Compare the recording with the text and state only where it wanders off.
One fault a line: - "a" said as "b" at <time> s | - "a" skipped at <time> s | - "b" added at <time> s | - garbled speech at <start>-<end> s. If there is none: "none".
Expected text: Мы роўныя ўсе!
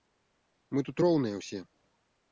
- "тут" added at 0.9 s